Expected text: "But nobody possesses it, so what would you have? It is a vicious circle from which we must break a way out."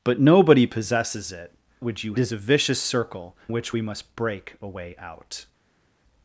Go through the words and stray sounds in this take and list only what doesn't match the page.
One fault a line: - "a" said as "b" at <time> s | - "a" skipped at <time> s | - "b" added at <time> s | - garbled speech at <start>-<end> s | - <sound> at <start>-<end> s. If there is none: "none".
- "so what" skipped at 1.5 s
- "have It" skipped at 2.2 s
- "from" skipped at 3.4 s